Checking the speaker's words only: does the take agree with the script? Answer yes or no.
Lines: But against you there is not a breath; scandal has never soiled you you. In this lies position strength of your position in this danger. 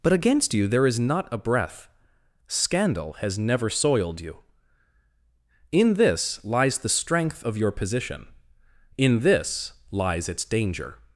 no